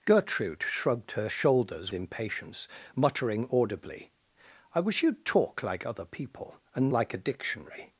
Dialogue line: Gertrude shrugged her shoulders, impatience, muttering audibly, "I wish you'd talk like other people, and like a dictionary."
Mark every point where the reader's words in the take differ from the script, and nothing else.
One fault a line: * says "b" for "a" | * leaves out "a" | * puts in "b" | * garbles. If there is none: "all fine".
all fine